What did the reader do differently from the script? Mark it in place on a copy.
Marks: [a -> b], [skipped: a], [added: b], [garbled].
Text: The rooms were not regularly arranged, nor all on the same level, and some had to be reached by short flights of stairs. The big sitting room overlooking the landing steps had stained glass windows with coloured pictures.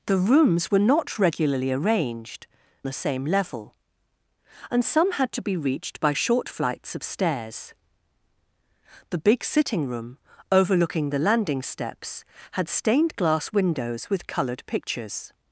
The rooms were not regularly arranged, [skipped: nor all on] the same level, and some had to be reached by short flights of stairs. The big sitting room overlooking the landing steps had stained glass windows with coloured pictures.